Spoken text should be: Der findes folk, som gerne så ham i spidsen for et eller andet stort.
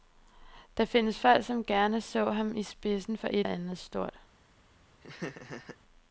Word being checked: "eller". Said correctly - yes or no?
no